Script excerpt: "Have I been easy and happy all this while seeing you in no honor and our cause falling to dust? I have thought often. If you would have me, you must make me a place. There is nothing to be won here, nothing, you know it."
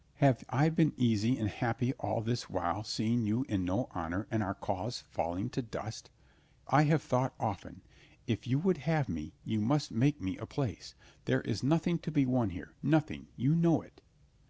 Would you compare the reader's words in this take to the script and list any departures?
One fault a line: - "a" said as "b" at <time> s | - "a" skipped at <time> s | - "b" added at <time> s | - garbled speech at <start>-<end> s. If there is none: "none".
none